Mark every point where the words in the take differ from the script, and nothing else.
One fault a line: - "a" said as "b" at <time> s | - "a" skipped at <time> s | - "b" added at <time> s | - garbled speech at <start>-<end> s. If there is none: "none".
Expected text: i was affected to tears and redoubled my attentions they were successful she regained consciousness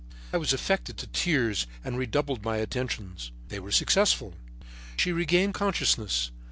none